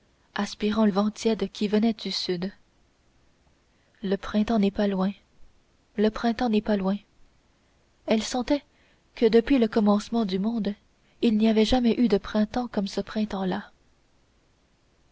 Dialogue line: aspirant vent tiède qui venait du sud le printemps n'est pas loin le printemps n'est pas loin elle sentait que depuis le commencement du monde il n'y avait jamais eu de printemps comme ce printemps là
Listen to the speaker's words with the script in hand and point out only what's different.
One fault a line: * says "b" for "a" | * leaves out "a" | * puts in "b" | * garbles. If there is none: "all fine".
all fine